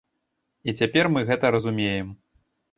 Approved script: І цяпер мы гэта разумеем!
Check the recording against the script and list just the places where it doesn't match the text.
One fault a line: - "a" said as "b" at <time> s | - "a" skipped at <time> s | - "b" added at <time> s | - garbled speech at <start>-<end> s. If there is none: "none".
none